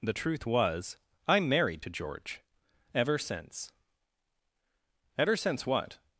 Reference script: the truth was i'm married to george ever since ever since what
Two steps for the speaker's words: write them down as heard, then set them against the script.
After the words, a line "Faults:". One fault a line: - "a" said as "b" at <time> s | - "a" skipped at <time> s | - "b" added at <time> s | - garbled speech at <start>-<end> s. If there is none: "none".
the truth was i'm married to george ever since ever since what
Faults:
none